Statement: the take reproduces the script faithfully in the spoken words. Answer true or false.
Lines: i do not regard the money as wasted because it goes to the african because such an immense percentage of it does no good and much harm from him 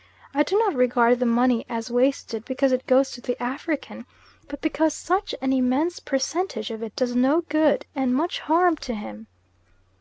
false